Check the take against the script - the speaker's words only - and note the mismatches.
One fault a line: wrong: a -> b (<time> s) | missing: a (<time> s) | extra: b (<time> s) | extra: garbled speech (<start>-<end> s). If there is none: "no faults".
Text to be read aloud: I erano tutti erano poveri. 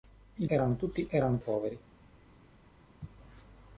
no faults